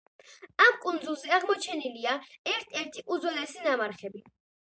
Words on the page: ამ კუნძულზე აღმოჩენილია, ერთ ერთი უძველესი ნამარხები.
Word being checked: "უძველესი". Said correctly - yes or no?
yes